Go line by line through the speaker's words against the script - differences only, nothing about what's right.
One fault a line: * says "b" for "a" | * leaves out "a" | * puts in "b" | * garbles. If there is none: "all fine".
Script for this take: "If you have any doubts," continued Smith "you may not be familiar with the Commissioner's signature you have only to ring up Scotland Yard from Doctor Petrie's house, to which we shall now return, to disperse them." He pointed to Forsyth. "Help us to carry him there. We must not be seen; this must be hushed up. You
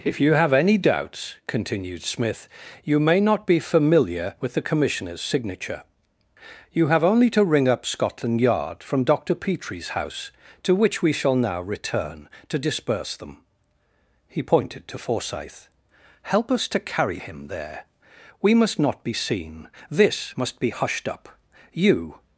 all fine